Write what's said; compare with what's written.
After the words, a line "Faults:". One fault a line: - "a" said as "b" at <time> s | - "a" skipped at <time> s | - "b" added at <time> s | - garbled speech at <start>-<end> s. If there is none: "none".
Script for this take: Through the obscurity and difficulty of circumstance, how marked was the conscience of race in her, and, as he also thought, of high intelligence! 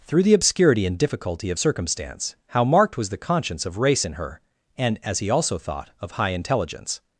Through the obscurity and difficulty of circumstance, how marked was the conscience of race in her, and, as he also thought, of high intelligence!
Faults:
none